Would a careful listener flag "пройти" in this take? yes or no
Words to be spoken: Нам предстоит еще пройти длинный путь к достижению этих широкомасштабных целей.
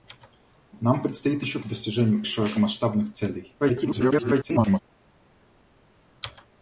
yes